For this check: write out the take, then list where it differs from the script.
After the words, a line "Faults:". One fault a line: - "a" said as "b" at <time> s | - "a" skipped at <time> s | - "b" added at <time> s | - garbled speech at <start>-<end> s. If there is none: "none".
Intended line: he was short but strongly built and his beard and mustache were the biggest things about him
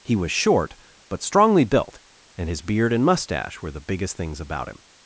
he was short but strongly built and his beard and mustache were the biggest things about him
Faults:
none